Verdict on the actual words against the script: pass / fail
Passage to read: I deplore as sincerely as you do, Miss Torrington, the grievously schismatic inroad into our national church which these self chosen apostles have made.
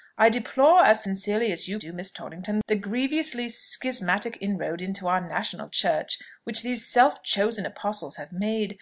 pass